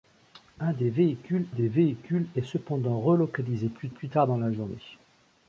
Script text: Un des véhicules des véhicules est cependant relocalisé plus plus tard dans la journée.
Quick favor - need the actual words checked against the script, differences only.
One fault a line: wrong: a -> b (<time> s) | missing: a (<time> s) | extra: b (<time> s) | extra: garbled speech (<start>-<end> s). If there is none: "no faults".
no faults